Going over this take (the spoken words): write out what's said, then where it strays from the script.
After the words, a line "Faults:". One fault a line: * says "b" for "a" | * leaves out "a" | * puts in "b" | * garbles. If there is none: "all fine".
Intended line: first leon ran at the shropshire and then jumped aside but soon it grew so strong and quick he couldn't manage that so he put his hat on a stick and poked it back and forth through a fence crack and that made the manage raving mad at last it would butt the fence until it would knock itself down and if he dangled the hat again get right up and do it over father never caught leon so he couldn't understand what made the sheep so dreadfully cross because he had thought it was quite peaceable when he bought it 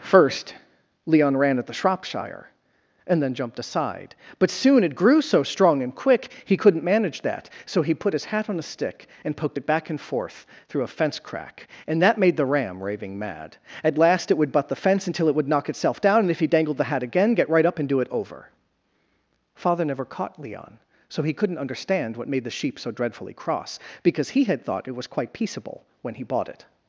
first leon ran at the shropshire and then jumped aside but soon it grew so strong and quick he couldn't manage that so he put his hat on a stick and poked it back and forth through a fence crack and that made the ram raving mad at last it would butt the fence until it would knock itself down and if he dangled the hat again get right up and do it over father never caught leon so he couldn't understand what made the sheep so dreadfully cross because he had thought it was quite peaceable when he bought it
Faults:
* says "ram" for "manage"